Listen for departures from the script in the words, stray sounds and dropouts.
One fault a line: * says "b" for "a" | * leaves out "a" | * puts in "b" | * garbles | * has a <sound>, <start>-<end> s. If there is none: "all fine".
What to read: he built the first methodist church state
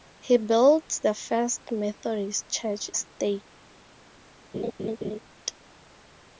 * has a laugh, 4.5-5.2 s